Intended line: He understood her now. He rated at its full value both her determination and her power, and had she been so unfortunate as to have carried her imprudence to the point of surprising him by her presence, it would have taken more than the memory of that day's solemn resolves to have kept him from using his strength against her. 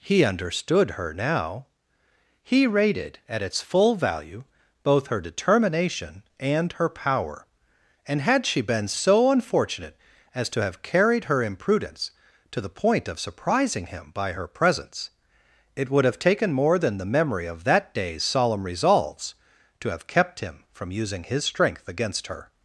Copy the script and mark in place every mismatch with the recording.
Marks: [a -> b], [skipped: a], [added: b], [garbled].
He understood her now. He rated at its full value both her determination and her power, and had she been so unfortunate as to have carried her imprudence to the point of surprising him by her presence, it would have taken more than the memory of that day's solemn resolves to have kept him from using his strength against her.